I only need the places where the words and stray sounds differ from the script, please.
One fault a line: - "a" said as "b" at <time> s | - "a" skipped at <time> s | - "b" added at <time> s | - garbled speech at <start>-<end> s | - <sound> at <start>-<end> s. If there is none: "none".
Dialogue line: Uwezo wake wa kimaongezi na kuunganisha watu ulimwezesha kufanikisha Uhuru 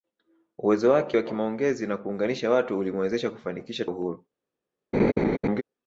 - laugh at 4.9-5.6 s